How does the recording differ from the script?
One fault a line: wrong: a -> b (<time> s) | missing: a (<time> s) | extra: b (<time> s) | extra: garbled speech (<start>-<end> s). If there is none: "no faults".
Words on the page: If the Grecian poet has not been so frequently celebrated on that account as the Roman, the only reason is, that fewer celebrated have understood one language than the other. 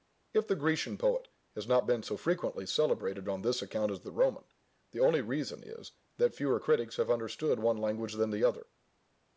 wrong: that -> this (3.4 s)
wrong: celebrated -> critics (6.6 s)